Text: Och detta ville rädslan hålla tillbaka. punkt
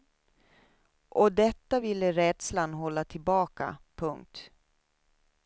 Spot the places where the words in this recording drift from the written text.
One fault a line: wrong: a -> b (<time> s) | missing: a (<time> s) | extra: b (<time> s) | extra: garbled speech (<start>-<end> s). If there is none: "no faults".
no faults